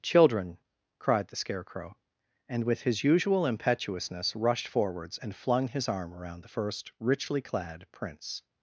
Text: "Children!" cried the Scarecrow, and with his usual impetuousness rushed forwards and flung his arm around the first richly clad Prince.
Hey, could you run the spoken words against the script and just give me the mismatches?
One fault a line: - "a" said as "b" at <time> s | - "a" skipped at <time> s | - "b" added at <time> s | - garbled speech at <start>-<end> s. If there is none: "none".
none